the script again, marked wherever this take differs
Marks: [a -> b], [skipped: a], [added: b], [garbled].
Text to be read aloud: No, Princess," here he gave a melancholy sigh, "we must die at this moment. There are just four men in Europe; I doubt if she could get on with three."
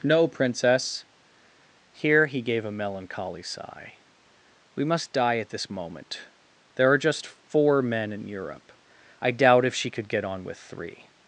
No, Princess," here he gave a melancholy sigh, "we must die at this moment. There are just four men in Europe; I doubt if she could get on with three."